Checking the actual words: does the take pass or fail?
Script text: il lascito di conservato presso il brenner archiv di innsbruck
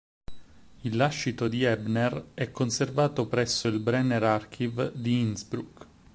fail